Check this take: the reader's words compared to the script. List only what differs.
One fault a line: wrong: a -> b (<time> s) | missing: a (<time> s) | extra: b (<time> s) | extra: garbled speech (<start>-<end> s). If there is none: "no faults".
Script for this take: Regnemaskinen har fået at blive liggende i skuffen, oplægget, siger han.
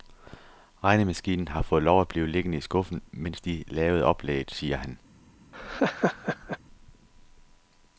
extra: lov (1.8 s)
extra: mens de lavede (3.1 s)